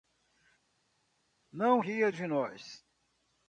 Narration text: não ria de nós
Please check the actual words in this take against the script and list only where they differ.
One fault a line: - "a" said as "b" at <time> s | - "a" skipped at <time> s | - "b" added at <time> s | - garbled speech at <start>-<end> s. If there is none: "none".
none